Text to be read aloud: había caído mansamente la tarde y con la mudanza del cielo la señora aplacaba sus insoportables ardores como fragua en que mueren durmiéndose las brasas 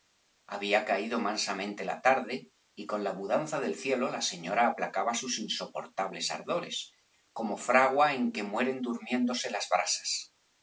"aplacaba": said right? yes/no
yes